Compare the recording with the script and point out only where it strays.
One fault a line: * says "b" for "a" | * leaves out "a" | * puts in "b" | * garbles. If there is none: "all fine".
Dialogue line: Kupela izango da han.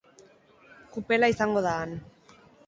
all fine